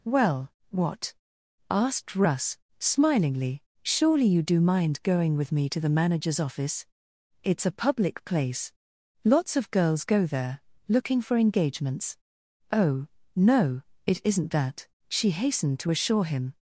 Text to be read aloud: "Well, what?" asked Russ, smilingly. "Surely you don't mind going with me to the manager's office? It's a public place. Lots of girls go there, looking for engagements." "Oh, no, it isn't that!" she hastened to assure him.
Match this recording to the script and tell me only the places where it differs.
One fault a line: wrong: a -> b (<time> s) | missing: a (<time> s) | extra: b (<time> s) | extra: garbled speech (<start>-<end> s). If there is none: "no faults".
wrong: don't -> do (4.4 s)